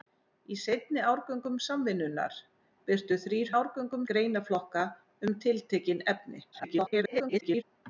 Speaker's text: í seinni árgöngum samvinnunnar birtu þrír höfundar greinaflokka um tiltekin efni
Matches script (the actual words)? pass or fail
fail